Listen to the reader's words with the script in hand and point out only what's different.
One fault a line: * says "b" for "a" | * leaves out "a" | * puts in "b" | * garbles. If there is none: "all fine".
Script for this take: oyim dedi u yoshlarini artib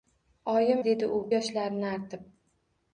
all fine